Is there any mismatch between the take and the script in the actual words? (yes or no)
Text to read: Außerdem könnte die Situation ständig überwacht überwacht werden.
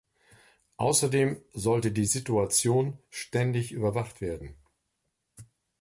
yes